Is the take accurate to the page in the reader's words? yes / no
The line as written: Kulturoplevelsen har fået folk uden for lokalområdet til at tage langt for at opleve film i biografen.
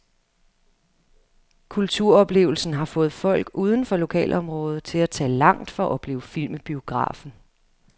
yes